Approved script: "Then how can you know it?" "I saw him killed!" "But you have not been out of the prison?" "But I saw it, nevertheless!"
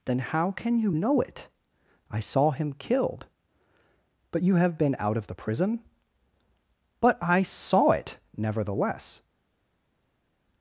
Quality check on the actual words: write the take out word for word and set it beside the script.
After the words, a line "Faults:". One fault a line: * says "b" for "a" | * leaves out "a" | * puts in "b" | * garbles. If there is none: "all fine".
"Then how can you know it?" "I saw him killed!" "But you have been out of the prison?" "But I saw it, nevertheless!"
Faults:
* leaves out "not"